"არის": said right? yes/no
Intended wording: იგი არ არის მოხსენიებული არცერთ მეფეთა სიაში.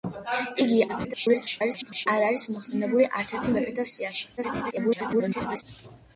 yes